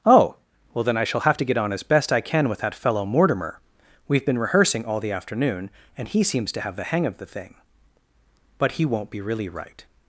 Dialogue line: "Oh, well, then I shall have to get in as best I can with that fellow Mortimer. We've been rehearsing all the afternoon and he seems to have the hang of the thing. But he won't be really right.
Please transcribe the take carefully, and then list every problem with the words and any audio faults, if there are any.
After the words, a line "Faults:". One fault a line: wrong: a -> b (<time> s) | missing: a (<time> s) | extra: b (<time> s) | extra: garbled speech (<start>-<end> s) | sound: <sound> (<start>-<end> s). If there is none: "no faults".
"Oh, well, then I shall have to get on as best I can with that fellow Mortimer. We've been rehearsing all the afternoon and he seems to have the hang of the thing. But he won't be really right.
Faults:
wrong: in -> on (1.6 s)